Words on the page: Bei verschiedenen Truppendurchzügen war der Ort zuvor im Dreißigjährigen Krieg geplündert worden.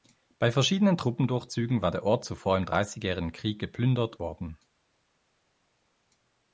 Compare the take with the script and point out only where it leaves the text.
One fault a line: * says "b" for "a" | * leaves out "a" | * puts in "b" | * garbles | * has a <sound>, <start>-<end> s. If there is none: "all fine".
all fine